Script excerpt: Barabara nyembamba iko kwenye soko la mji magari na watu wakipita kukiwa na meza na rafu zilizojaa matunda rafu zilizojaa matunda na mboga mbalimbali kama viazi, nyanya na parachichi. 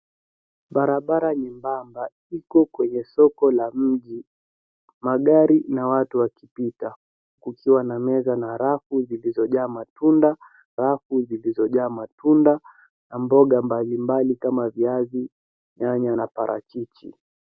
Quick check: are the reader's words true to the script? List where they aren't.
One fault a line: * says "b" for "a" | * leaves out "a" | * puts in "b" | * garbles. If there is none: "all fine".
all fine